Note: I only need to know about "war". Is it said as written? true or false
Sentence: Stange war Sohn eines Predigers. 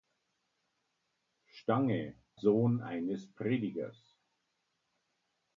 false